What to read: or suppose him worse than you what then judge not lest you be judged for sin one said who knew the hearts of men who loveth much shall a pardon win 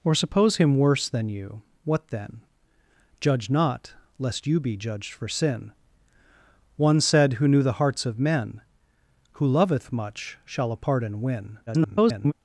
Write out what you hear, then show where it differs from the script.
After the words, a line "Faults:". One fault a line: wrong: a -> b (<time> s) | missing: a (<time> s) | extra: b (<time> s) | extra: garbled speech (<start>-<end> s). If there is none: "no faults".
or suppose him worse than you what then judge not lest you be judged for sin one said who knew the hearts of men who loveth much shall a pardon win [garbled]
Faults:
extra: garbled speech (11.7-12.3 s)